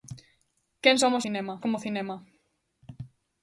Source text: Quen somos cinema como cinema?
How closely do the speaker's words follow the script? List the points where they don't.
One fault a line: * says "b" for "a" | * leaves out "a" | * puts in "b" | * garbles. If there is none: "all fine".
all fine